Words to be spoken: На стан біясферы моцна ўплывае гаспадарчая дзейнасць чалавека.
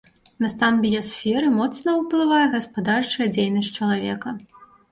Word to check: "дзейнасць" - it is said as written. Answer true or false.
true